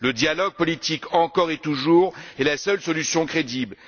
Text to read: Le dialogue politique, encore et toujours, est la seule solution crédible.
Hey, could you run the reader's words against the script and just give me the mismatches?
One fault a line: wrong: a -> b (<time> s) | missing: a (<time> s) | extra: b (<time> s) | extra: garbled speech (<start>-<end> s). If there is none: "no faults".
no faults